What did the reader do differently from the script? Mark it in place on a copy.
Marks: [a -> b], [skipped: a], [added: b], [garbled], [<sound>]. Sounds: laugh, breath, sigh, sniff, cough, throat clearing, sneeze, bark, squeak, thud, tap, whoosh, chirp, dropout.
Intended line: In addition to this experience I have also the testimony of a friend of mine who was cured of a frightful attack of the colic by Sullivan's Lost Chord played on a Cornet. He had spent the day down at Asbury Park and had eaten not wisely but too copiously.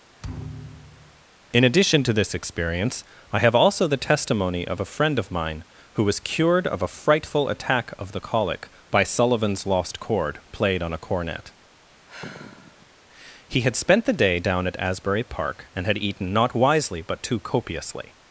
[thud] In addition to this experience I have also the testimony of a friend of mine who was cured of a frightful attack of the colic by Sullivan's Lost Chord played on a Cornet. [sigh] He had spent the day down at Asbury Park and had eaten not wisely but too copiously.